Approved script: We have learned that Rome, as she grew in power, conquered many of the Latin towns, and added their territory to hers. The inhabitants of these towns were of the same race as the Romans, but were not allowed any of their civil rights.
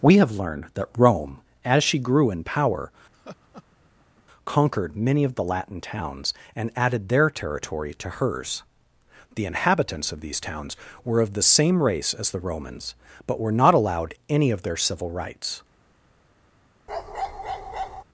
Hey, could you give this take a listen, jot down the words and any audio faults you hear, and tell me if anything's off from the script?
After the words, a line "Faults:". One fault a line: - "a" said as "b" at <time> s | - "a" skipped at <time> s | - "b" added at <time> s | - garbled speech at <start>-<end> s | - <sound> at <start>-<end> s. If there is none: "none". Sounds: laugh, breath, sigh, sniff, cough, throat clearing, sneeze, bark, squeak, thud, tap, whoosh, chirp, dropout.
We have learned that Rome, as she grew in power, conquered many of the Latin towns, and added their territory to hers. The inhabitants of these towns were of the same race as the Romans, but were not allowed any of their civil rights.
Faults:
- laugh at 3.1-4.2 s
- bark at 16.9-18.0 s